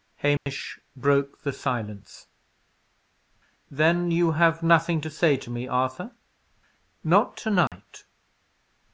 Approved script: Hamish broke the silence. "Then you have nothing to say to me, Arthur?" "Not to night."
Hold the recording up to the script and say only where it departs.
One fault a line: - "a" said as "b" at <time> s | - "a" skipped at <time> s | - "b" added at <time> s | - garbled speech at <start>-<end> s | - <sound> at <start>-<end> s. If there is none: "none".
- dropout at 0.4-0.5 s
- dropout at 7.7-7.7 s